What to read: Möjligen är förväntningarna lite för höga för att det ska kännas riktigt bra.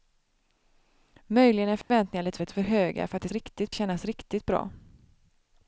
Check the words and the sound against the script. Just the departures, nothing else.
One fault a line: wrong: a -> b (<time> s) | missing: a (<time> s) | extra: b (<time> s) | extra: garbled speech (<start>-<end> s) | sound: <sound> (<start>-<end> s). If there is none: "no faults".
sound: dropout (1.8-1.9 s)
extra: lite (2.4 s)
wrong: ska -> riktigt (3.3 s)